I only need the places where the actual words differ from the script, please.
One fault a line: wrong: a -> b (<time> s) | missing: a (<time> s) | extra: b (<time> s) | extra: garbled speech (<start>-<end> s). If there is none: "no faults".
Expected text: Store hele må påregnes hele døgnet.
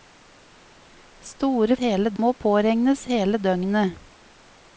no faults